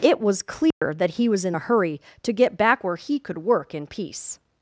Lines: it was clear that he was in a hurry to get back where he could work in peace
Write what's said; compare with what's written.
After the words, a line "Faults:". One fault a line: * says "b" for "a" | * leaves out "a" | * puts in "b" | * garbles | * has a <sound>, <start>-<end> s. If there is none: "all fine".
it was clear that he was in a hurry to get back where he could work in peace
Faults:
* has a dropout, 0.7-0.8 s